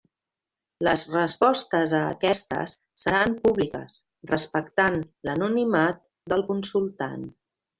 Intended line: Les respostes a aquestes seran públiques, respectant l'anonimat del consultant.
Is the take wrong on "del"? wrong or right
right